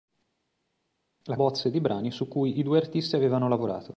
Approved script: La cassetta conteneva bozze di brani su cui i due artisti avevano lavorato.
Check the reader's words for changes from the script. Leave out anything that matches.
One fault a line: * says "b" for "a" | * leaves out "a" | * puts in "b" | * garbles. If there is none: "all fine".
* leaves out "cassetta conteneva"